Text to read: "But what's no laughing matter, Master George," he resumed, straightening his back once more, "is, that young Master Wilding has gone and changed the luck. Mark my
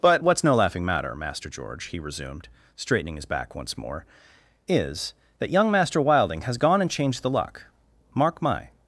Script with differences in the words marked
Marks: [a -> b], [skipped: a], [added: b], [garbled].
"But what's no laughing matter, Master George," he resumed, straightening his back once more, "is, that young Master Wilding has gone and changed the luck. Mark my